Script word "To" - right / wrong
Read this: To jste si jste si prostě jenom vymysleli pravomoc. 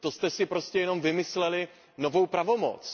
right